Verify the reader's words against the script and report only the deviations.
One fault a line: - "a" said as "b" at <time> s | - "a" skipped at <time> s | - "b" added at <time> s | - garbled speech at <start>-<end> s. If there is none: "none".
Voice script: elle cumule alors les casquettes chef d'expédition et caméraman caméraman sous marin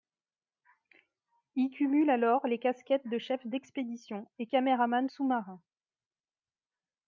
- "elle" said as "il" at 1.5 s
- "de" added at 3.1 s
- "caméraman" skipped at 5.1 s